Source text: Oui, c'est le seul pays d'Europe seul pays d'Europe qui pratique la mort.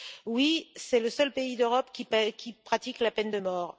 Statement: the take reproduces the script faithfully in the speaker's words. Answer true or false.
false